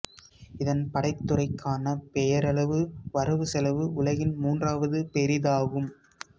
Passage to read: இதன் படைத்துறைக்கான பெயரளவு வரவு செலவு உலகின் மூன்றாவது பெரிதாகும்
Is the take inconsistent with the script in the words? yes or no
no